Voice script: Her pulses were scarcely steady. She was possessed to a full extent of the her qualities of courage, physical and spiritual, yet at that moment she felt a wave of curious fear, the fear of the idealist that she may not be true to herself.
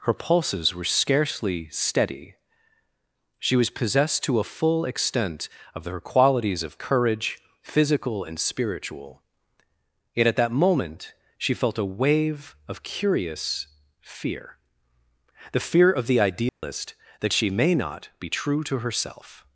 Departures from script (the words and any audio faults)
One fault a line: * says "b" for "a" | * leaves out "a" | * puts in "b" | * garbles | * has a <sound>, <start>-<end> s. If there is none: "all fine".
* leaves out "the"
* has a dropout, 16.5-16.6 s